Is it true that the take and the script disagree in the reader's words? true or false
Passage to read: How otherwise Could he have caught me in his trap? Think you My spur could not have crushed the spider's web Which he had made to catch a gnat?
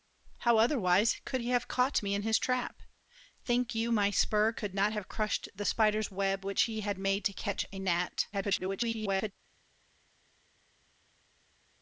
true